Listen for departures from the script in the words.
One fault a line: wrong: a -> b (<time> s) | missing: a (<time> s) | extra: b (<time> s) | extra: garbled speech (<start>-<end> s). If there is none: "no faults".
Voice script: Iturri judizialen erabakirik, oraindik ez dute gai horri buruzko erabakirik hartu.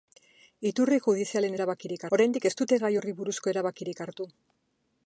no faults